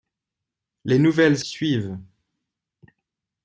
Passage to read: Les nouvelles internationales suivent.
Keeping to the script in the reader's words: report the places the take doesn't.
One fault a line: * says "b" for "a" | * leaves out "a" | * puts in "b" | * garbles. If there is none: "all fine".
* leaves out "internationales"